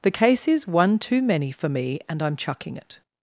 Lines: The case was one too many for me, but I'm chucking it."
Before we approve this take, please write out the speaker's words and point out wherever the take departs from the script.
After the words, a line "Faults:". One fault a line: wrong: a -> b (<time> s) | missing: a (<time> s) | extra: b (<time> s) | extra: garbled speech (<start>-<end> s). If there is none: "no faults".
The case is one too many for me, and I'm chucking it."
Faults:
wrong: was -> is (0.5 s)
wrong: but -> and (2.1 s)